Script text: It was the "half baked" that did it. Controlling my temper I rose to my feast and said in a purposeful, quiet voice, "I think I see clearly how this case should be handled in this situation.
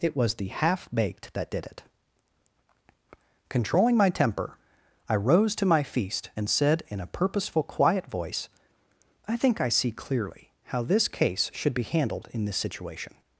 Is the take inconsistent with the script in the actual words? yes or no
no